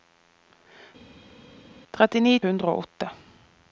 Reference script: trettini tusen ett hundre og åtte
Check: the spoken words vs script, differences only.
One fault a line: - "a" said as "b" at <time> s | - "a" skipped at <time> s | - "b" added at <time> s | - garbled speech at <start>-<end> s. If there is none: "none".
- "tusen ett" skipped at 2.3 s